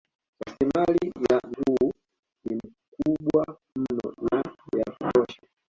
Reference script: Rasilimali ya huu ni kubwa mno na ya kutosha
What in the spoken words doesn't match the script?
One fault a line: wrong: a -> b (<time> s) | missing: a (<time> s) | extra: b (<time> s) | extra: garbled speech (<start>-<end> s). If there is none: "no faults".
no faults